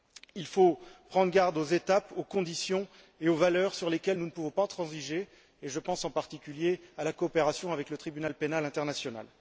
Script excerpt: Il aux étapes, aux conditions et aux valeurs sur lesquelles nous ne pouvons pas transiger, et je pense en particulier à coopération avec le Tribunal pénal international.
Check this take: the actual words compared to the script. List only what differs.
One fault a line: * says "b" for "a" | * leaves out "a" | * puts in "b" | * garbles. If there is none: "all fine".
* puts in "faut prendre garde"
* puts in "la"